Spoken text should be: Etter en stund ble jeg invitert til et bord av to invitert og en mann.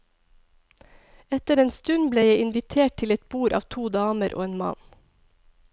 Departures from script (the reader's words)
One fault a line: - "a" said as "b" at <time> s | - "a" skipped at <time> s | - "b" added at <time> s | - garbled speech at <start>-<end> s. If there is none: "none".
- "invitert" said as "damer" at 4.0 s